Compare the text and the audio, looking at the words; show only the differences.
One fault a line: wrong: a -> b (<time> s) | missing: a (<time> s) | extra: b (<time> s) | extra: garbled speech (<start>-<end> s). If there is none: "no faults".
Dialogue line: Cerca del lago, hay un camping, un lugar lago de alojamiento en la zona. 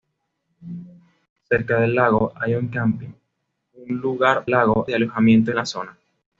no faults